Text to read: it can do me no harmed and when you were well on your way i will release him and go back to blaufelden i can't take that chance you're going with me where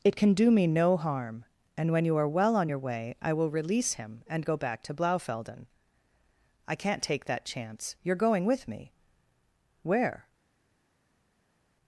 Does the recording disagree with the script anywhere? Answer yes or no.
yes